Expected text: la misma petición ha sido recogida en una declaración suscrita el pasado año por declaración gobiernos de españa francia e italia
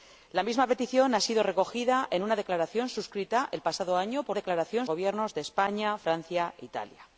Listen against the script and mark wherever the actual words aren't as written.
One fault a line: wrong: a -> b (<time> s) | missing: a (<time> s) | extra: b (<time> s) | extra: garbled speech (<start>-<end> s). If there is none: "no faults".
no faults